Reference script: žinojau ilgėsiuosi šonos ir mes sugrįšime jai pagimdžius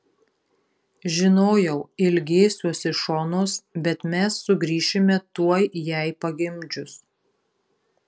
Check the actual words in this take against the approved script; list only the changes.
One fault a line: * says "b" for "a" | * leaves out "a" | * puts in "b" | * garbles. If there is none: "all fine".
* says "bet" for "ir"
* puts in "tuoj"